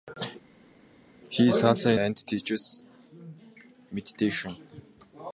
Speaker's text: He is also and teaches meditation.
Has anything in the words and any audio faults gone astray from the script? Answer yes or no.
no